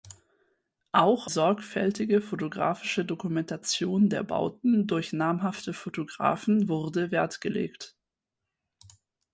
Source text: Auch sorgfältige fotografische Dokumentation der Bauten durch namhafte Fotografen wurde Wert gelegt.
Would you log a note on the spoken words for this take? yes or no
no